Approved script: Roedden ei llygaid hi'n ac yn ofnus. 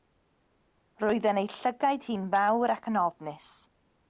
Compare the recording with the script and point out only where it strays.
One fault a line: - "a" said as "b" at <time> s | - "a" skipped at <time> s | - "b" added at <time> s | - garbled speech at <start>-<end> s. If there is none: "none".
- "fawr" added at 2.3 s